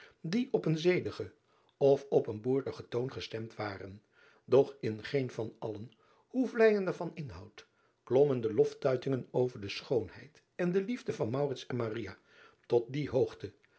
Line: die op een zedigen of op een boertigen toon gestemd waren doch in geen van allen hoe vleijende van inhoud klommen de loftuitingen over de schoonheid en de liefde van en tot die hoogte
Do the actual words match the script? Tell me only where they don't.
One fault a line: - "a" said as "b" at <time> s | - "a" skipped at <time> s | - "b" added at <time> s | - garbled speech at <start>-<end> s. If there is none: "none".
none